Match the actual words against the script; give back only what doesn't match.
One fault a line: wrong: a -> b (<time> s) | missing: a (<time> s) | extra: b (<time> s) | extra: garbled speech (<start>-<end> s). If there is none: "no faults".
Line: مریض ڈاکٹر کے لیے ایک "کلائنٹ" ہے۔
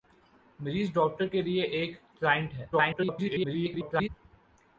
extra: garbled speech (2.7-4.1 s)